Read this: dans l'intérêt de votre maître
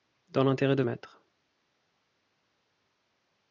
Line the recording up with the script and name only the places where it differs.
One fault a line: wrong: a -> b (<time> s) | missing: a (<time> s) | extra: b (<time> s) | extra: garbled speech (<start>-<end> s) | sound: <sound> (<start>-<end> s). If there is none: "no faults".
missing: votre (0.8 s)